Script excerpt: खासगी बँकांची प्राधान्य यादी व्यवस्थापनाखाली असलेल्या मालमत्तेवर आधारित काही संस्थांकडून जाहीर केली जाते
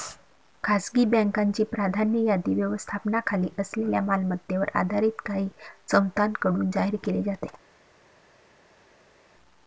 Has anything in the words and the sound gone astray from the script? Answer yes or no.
no